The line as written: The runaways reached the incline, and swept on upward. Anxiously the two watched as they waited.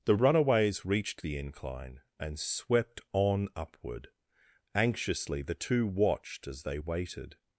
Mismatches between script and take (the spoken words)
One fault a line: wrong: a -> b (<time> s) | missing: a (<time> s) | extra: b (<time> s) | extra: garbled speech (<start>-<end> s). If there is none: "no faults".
no faults